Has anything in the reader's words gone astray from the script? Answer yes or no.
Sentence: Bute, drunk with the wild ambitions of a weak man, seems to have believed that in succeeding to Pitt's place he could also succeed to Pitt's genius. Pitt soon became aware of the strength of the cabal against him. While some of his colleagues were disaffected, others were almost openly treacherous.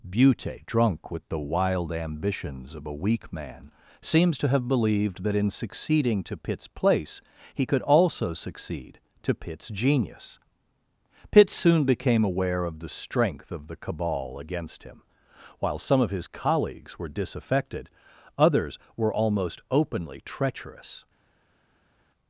no